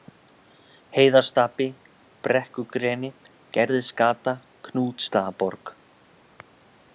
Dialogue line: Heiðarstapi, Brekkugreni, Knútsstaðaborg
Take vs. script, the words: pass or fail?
fail